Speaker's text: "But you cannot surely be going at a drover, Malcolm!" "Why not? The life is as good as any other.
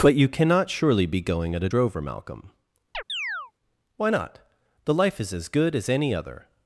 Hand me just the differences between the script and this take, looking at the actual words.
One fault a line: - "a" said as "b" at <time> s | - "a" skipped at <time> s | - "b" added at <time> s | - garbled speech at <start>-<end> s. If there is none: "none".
none